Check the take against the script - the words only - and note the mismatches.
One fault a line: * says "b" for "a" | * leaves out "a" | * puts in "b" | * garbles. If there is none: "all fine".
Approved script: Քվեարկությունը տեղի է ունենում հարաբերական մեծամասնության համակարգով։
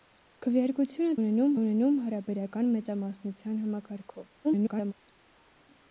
* says "ունենում" for "տեղի"
* garbles